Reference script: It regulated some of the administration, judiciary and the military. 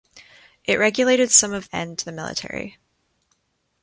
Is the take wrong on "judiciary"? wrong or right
wrong